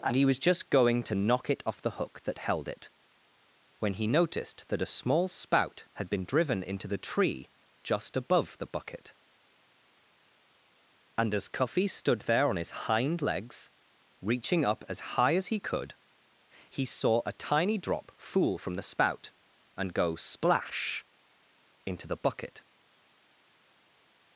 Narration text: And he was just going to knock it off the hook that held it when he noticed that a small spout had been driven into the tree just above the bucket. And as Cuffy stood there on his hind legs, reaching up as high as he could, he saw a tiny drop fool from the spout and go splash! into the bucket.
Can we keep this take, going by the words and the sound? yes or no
yes